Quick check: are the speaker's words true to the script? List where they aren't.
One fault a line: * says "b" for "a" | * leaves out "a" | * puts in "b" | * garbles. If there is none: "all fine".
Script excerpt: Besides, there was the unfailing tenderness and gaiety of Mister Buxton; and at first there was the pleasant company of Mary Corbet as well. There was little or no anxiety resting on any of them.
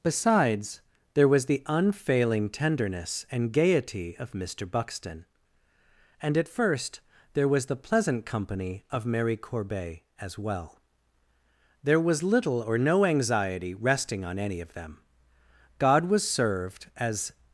* puts in "God was served as"